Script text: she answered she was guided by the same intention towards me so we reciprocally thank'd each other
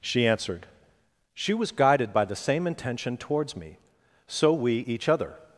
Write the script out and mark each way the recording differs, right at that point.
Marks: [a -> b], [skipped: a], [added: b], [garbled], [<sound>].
she answered she was guided by the same intention towards me so we [skipped: reciprocally thank'd] each other